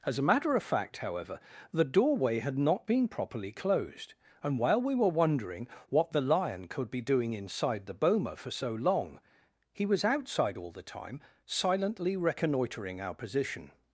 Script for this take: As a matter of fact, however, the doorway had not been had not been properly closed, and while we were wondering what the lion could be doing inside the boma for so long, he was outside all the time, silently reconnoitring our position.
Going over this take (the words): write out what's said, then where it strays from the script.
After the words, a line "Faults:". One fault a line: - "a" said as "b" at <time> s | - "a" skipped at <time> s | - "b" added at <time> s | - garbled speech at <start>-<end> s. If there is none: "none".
As a matter of fact, however, the doorway had not been properly closed, and while we were wondering what the lion could be doing inside the boma for so long, he was outside all the time, silently reconnoitring our position.
Faults:
- "had not been" skipped at 3.1 s